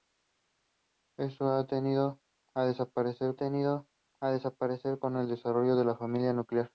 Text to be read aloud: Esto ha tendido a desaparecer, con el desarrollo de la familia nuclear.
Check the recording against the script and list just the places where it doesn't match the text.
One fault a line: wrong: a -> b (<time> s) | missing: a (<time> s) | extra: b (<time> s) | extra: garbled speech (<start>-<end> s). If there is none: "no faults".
extra: tendido a desaparecer (3.4 s)